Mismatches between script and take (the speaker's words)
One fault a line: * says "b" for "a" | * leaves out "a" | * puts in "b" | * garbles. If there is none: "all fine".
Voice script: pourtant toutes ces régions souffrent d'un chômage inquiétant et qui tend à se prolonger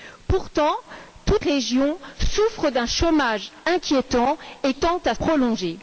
* leaves out "ces"
* leaves out "qui"
* leaves out "se"